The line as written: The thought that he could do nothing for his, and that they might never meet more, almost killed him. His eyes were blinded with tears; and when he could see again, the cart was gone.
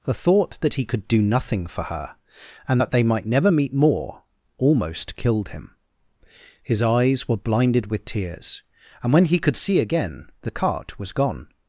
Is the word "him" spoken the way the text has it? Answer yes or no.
yes